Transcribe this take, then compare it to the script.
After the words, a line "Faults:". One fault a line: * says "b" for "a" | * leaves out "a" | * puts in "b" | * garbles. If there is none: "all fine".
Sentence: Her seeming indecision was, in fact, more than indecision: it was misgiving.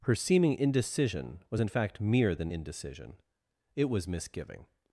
Her seeming indecision was, in fact, mere than indecision: it was misgiving.
Faults:
* says "mere" for "more"